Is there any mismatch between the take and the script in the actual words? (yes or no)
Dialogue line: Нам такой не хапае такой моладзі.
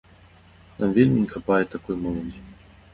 yes